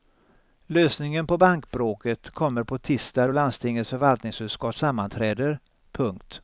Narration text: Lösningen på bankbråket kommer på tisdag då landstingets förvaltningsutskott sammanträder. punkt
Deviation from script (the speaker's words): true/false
false